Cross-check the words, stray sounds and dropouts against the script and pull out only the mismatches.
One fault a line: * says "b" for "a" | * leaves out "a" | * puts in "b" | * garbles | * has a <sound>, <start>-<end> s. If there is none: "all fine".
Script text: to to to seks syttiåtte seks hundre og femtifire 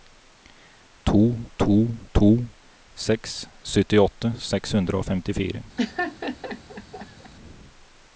* has a laugh, 5.8-7.3 s